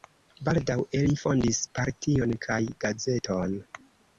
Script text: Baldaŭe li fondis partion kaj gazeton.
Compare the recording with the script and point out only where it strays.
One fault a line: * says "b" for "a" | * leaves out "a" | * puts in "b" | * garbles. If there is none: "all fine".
all fine